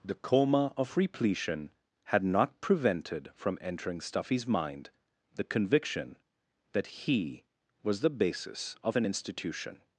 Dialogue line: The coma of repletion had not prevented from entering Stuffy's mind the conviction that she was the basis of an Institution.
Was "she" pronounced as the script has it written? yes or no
no